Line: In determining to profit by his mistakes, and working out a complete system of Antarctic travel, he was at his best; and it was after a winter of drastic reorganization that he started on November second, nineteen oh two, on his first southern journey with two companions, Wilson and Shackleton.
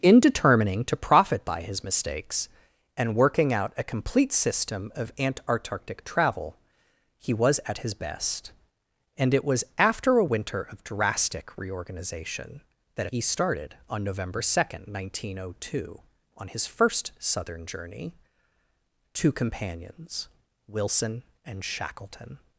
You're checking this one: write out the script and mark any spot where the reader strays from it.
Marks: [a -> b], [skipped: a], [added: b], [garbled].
In determining to profit by his mistakes, and working out a complete system of Antarctic travel, he was at his best; and it was after a winter of drastic reorganization that he started on November second, nineteen oh two, on his first southern journey [skipped: with] two companions, Wilson and Shackleton.